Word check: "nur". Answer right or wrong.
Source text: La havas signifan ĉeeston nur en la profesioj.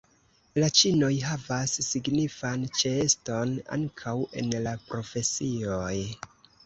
wrong